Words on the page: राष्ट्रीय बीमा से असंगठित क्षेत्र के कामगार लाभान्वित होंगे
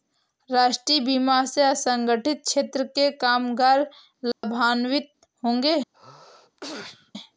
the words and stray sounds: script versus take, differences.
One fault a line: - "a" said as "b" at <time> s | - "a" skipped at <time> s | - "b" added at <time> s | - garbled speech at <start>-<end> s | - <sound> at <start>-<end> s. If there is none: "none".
- dropout at 4.3-4.4 s
- sneeze at 5.9-7.1 s